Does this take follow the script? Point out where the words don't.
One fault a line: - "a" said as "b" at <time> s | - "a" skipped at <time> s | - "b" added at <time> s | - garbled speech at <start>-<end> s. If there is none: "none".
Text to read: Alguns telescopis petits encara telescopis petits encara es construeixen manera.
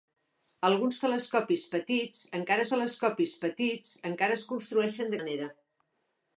none